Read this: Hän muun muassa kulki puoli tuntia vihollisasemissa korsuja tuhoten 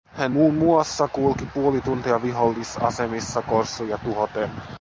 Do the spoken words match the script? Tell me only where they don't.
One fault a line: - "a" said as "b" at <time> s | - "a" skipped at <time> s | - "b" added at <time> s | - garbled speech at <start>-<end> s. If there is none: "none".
none